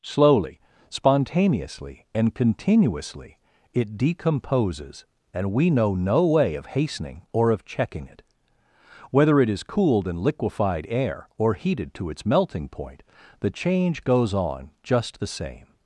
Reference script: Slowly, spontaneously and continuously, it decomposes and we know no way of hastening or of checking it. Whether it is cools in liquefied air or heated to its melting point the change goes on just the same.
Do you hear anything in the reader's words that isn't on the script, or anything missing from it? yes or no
yes